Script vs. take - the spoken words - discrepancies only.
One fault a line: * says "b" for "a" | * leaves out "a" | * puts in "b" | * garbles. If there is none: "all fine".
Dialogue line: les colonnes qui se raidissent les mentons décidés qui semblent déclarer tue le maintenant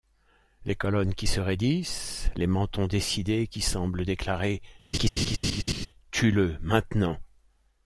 all fine